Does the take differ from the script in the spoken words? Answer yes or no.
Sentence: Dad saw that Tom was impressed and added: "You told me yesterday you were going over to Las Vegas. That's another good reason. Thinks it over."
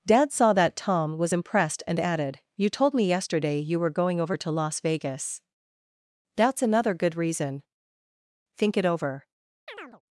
yes